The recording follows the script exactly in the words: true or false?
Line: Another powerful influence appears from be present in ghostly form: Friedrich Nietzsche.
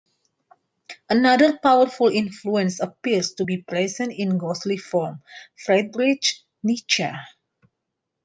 false